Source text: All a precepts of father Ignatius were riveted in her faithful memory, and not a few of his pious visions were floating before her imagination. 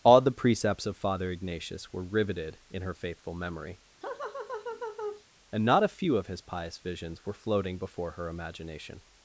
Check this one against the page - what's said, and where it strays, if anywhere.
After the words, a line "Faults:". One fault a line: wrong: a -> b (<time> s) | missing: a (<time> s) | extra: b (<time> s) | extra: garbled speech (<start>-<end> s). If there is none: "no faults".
All the precepts of father Ignatius were riveted in her faithful memory, and not a few of his pious visions were floating before her imagination.
Faults:
wrong: a -> the (0.2 s)